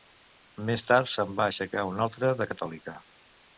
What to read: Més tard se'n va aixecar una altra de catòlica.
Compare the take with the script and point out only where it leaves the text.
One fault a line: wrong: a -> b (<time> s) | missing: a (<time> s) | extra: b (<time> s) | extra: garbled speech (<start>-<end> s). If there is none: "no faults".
no faults